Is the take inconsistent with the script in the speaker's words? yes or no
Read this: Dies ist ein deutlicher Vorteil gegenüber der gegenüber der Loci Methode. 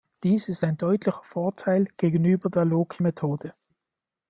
yes